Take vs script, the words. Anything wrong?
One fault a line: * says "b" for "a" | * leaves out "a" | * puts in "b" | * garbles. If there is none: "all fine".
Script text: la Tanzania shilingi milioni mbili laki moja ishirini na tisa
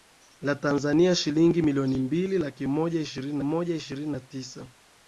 * puts in "moja ishirini"